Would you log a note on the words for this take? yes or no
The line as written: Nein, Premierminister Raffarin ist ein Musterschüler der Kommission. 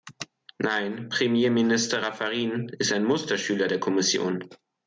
no